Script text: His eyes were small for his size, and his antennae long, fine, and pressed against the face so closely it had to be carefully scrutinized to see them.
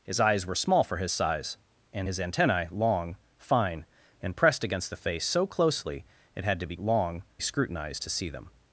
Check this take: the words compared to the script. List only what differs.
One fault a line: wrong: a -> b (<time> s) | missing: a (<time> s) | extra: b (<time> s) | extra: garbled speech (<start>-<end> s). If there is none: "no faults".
wrong: carefully -> long (6.8 s)